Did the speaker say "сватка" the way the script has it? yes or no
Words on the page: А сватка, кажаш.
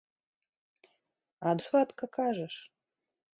yes